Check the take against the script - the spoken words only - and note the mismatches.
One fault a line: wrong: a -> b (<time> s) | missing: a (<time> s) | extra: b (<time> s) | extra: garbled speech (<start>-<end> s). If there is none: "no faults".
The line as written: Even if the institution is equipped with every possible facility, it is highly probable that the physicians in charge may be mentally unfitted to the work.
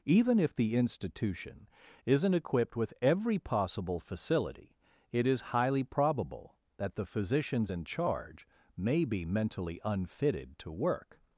wrong: is -> isn't (2.0 s)
missing: the (10.7 s)